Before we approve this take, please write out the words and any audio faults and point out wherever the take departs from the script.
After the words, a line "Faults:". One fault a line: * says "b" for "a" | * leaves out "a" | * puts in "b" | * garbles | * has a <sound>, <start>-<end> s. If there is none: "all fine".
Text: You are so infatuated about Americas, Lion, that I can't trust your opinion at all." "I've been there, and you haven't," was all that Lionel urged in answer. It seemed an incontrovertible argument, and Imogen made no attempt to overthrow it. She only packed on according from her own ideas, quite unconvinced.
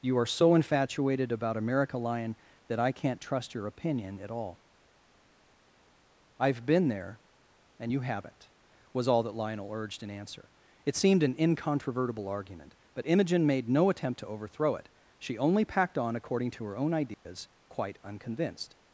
You are so infatuated about America, Lion, that I can't trust your opinion at all." "I've been there, and you haven't," was all that Lionel urged in answer. It seemed an incontrovertible argument, but Imogen made no attempt to overthrow it. She only packed on according to her own ideas, quite unconvinced.
Faults:
* says "America" for "Americas"
* says "but" for "and"
* says "to" for "from"
* has a dropout, 17.1-17.3 s